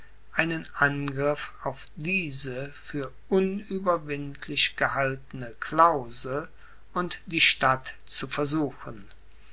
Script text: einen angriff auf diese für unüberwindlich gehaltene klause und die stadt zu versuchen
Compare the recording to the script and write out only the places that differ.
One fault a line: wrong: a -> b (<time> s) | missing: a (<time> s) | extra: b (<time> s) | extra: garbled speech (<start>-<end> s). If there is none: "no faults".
no faults